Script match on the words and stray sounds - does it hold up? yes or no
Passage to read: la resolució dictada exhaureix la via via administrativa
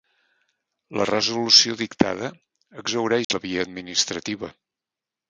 no